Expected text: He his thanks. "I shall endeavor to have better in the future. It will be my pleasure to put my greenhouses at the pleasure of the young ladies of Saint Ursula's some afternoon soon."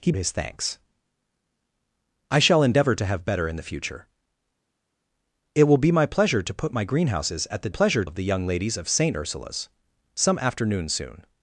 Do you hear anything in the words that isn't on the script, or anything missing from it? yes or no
no